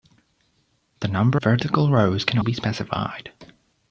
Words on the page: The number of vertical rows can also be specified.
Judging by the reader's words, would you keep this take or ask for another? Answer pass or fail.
fail